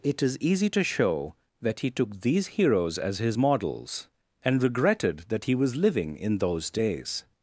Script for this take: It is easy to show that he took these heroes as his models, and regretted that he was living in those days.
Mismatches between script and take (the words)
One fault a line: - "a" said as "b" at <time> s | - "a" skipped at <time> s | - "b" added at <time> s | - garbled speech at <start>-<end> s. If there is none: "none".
none